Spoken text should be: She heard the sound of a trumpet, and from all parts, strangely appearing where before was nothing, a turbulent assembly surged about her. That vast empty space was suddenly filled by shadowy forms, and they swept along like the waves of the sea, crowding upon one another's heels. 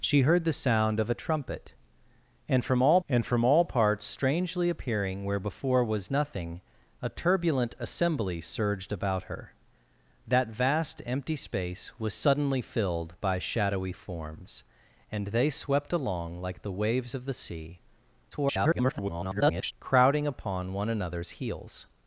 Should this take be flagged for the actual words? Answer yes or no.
yes